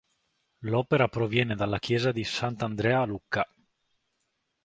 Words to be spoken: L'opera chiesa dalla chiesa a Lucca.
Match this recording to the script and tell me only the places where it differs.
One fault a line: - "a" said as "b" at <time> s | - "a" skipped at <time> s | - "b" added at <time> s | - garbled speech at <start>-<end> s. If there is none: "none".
- "chiesa" said as "proviene" at 1.1 s
- "di Sant'Andrea" added at 2.1 s